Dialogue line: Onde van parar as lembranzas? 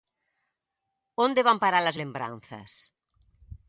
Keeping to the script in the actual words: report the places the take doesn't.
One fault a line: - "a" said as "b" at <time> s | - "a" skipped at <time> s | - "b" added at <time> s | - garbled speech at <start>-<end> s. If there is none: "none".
none